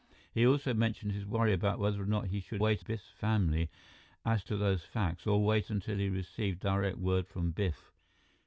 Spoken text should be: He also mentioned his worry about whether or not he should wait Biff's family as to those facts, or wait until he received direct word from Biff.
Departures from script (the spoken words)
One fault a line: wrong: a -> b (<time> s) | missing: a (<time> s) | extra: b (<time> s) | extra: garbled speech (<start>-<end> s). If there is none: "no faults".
no faults